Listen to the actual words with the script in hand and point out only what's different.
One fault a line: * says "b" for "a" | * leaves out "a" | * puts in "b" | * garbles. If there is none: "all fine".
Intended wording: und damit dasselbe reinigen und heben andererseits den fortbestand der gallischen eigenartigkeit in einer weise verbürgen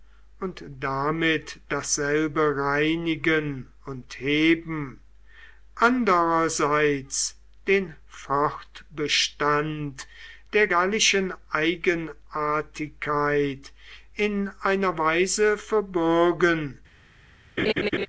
all fine